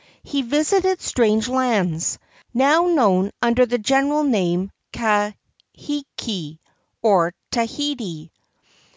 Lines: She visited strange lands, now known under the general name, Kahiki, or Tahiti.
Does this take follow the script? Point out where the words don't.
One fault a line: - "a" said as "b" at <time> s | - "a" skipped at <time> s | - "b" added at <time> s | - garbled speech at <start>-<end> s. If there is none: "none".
- "She" said as "He" at 0.2 s